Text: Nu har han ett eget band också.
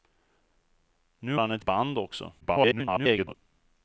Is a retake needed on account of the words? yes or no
yes